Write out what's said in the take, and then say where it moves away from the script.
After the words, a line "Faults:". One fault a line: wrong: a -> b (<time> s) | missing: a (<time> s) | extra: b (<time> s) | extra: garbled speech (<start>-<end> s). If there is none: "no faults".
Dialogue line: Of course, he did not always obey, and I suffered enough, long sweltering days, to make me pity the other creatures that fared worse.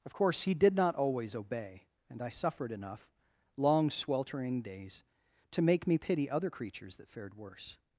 Of course, he did not always obey, and I suffered enough, long sweltering days, to make me pity other creatures that fared worse.
Faults:
missing: the (6.3 s)